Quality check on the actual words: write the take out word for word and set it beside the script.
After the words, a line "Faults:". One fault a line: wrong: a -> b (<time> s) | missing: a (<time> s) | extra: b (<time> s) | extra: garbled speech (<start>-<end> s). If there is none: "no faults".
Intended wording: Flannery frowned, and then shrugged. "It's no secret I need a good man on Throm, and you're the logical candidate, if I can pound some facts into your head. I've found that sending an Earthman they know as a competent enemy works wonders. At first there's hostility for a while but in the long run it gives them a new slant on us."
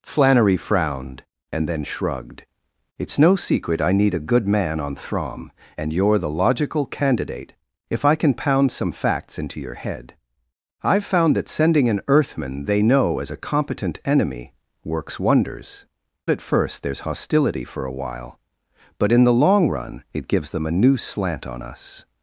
Flannery frowned, and then shrugged. "It's no secret I need a good man on Throm, and you're the logical candidate, if I can pound some facts into your head. I've found that sending an Earthman they know as a competent enemy works wonders. At first there's hostility for a while but in the long run it gives them a new slant on us."
Faults:
no faults